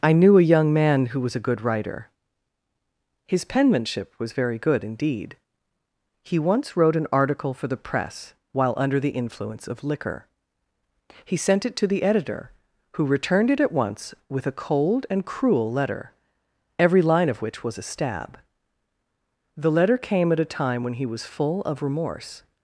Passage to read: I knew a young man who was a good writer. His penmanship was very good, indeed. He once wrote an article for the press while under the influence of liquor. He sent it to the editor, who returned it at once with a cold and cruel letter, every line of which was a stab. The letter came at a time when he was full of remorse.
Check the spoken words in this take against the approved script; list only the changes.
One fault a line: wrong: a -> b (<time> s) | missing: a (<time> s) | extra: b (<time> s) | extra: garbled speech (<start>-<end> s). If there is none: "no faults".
no faults